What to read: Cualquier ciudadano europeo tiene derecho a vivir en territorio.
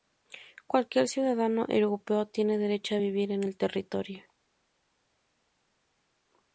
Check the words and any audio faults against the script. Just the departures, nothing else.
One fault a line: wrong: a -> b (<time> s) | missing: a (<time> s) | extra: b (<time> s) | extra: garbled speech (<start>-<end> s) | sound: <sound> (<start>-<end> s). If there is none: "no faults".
extra: el (3.4 s)